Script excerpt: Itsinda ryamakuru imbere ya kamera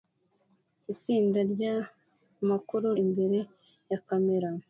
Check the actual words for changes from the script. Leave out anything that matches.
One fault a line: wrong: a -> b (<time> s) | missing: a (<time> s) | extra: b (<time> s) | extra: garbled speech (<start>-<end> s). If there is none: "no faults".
no faults